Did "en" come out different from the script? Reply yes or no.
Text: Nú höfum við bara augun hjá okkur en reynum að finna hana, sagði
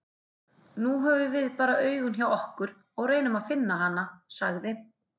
yes